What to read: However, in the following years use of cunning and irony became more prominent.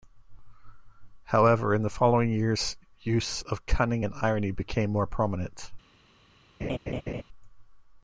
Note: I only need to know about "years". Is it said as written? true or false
true